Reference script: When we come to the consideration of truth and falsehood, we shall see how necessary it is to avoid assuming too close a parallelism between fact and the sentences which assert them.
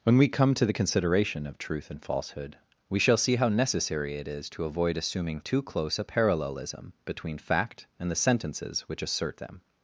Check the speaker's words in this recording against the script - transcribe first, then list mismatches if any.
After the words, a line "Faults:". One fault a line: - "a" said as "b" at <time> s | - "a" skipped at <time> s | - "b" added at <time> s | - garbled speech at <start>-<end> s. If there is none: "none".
When we come to the consideration of truth and falsehood, we shall see how necessary it is to avoid assuming too close a parallelism between fact and the sentences which assert them.
Faults:
none